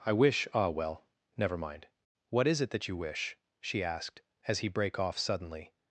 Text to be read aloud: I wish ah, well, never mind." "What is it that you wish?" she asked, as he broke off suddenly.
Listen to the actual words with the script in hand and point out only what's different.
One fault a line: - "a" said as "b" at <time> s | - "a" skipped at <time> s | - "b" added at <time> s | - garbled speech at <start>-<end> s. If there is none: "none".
- "broke" said as "brake" at 4.7 s